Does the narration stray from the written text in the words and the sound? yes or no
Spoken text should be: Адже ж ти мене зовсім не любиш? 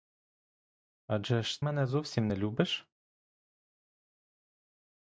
yes